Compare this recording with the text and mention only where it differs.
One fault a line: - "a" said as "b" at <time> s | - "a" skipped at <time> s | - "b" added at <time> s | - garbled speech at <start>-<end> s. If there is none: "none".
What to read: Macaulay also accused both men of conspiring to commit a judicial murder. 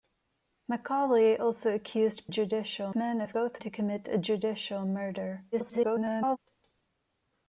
- "both" said as "judicial" at 2.3 s
- "conspiring" said as "both" at 3.3 s
- garbled speech at 5.5-6.4 s